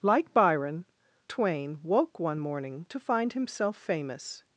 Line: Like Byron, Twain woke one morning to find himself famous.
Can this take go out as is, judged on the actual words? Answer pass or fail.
pass